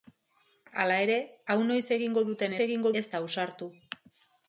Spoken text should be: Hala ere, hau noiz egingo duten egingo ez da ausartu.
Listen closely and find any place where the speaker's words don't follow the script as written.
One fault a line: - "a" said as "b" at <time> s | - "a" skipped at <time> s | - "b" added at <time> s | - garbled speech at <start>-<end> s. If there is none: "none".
none